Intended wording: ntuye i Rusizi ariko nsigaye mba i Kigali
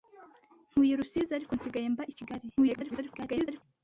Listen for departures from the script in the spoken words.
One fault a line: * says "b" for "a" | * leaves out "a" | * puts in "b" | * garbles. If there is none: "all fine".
* garbles